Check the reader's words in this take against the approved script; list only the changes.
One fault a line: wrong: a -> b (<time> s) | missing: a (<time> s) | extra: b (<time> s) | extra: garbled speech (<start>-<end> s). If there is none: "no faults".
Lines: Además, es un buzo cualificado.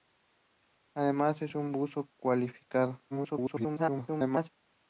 extra: garbled speech (3.1-4.5 s)